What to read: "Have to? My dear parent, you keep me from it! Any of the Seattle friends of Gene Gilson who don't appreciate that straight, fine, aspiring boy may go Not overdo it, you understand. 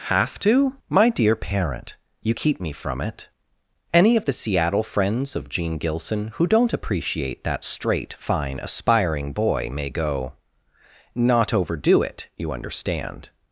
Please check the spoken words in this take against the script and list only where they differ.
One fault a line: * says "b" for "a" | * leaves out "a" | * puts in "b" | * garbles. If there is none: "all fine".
all fine